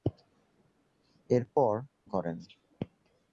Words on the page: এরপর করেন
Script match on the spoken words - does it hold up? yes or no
yes